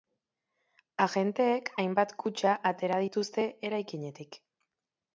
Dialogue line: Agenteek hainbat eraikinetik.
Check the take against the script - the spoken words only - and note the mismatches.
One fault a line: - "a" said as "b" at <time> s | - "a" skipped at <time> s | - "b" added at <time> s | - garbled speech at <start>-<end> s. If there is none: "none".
- "kutxa atera dituzte" added at 2.2 s